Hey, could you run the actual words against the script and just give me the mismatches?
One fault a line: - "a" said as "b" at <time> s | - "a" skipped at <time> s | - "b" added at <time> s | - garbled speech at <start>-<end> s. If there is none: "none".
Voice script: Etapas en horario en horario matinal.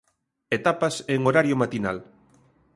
- "en horario" skipped at 1.6 s